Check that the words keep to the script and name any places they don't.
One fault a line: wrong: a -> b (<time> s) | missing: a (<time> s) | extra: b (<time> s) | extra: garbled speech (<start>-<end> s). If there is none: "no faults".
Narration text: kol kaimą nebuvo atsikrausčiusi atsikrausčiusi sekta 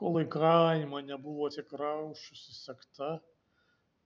extra: į (0.2 s)
missing: atsikrausčiusi (2.5 s)